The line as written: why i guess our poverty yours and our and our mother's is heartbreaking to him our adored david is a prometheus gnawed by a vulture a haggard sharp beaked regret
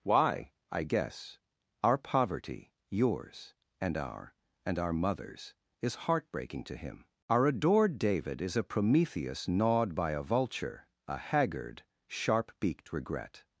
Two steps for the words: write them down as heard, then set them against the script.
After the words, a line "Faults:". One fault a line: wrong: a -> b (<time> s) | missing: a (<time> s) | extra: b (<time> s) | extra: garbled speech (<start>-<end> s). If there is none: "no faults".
why i guess our poverty yours and our and our mother's is heartbreaking to him our adored david is a prometheus gnawed by a vulture a haggard sharp beaked regret
Faults:
no faults